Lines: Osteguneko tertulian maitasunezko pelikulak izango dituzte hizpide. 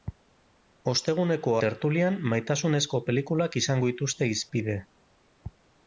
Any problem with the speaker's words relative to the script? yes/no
no